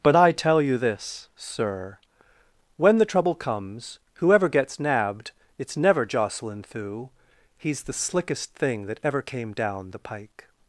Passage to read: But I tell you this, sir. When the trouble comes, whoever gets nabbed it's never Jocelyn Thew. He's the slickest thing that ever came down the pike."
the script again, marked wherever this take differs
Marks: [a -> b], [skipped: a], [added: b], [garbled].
But I tell you this, sir. When the trouble comes, whoever gets nabbed it's never Jocelyn Thew. He's the slickest thing that ever came down the pike."